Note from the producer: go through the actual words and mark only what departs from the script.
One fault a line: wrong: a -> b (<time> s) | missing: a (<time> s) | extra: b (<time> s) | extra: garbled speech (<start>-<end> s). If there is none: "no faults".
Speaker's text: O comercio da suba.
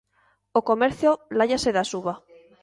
extra: láiase (1.4 s)